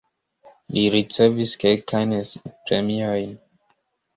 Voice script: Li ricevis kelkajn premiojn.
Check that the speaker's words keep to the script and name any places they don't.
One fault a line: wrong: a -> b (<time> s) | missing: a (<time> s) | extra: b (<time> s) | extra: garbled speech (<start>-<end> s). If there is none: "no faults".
no faults